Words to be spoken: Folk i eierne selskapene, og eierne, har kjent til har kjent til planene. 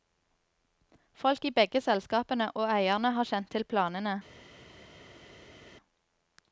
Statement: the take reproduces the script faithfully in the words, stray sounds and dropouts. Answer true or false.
false